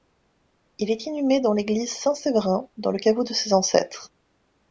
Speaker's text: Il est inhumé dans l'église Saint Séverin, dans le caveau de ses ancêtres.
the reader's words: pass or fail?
pass